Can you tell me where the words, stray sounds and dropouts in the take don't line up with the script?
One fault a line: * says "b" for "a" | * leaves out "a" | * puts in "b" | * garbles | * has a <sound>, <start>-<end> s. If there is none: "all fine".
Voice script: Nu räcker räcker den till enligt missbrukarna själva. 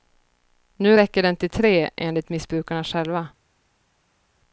* leaves out "räcker"
* puts in "tre"